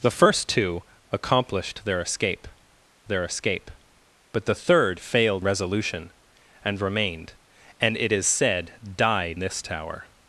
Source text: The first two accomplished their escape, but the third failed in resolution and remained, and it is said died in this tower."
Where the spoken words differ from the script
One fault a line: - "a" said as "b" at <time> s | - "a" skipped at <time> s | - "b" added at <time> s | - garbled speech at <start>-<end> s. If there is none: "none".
- "their escape" added at 3.1 s
- "in" skipped at 5.4 s
- "in" skipped at 9.4 s